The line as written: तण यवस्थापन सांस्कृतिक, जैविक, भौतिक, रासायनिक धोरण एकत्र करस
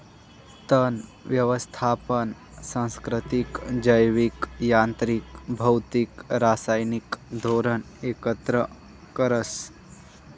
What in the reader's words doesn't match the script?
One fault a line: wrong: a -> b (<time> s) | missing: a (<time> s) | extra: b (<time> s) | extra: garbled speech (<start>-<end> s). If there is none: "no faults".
extra: यांत्रिक (4.6 s)